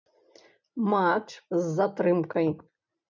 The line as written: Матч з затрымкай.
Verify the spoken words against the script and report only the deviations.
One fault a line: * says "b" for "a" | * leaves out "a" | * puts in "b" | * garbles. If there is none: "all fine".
all fine